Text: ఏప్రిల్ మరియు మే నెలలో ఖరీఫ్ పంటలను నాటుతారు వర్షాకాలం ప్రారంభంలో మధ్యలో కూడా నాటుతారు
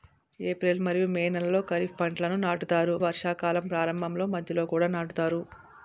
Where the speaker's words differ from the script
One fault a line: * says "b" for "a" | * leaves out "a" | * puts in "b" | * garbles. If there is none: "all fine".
all fine